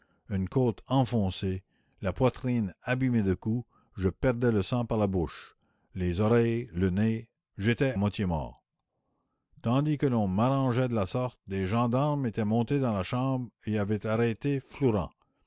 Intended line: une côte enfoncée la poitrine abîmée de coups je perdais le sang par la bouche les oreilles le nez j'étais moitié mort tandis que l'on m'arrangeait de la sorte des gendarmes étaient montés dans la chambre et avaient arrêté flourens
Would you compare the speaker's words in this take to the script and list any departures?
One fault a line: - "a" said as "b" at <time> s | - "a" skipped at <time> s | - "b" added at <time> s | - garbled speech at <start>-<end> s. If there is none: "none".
none